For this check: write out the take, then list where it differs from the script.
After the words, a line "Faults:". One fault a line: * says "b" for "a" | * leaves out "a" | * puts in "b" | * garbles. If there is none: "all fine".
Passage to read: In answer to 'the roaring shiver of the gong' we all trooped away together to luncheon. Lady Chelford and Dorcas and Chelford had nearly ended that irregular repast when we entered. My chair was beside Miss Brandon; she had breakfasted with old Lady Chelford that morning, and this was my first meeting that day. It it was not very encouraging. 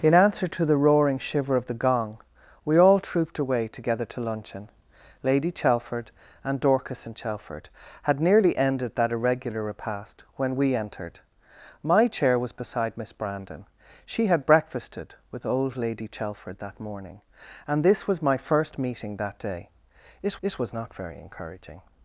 In answer to 'the roaring shiver of the gong' we all trooped away together to luncheon. Lady Chelford and Dorcas and Chelford had nearly ended that irregular repast when we entered. My chair was beside Miss Brandon; she had breakfasted with old Lady Chelford that morning, and this was my first meeting that day. It it was not very encouraging.
Faults:
all fine